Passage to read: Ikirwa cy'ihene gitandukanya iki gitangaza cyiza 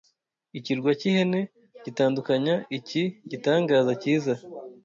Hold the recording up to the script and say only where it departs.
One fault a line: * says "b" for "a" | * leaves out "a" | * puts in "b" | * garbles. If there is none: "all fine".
all fine